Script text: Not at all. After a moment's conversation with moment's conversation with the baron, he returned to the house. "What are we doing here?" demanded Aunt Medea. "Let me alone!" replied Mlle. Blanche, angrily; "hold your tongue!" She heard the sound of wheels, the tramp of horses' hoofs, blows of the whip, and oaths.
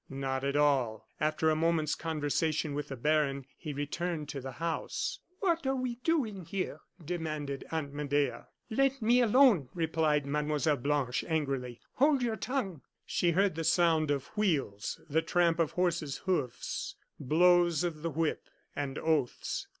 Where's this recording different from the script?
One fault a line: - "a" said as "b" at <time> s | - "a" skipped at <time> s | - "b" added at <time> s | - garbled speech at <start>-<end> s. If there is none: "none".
- "moment's conversation with" skipped at 2.9 s